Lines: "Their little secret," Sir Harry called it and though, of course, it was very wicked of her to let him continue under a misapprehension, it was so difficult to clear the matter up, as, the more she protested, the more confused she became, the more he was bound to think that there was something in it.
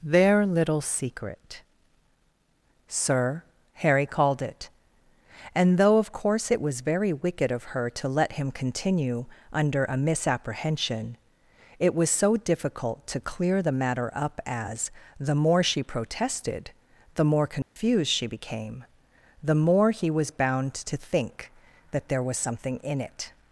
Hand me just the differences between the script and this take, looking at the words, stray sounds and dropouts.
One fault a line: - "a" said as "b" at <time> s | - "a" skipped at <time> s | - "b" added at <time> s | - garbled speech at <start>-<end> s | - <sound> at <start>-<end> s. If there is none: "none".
- dropout at 17.6-17.8 s